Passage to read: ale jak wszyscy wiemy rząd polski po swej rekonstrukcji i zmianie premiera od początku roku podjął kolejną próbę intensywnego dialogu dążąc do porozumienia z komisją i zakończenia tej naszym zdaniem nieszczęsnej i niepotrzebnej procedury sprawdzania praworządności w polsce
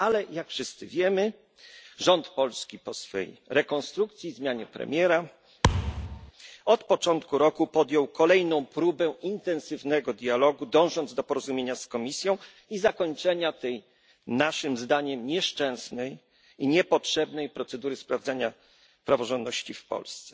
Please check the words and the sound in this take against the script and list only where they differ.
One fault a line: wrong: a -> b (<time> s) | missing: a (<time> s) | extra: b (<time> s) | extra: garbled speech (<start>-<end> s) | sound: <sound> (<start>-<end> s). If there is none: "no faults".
sound: thud (5.6-6.3 s)